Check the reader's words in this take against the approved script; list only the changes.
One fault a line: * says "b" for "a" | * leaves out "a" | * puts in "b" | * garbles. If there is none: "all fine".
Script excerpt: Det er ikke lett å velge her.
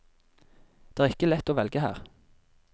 all fine